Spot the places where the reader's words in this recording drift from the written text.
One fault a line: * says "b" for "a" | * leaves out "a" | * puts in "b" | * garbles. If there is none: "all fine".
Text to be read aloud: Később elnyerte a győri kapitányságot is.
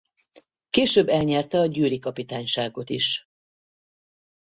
all fine